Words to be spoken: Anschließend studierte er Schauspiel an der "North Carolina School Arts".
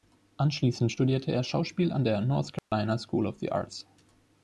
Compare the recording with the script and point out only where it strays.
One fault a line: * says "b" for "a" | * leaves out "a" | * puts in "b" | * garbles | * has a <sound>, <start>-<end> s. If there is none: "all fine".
* has a dropout, 2.6-2.7 s
* puts in "of the"